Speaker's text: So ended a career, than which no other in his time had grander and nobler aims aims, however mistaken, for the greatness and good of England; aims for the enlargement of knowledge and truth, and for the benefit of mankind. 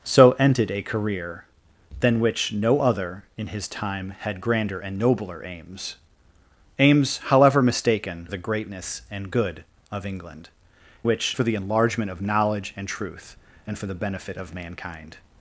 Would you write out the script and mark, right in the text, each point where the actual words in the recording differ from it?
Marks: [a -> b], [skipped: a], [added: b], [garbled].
So ended a career, than which no other in his time had grander and nobler aims aims, however mistaken, [skipped: for] the greatness and good of England; [aims -> which] for the enlargement of knowledge and truth, and for the benefit of mankind.